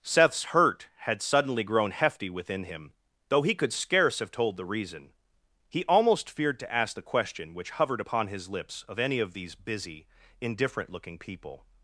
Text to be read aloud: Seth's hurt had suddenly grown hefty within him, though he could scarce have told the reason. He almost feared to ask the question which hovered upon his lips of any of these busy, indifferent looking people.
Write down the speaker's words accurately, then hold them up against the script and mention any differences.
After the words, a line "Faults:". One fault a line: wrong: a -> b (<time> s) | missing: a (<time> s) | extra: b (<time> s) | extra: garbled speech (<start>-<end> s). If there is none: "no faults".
Seth's hurt had suddenly grown hefty within him, though he could scarce have told the reason. He almost feared to ask the question which hovered upon his lips of any of these busy, indifferent looking people.
Faults:
no faults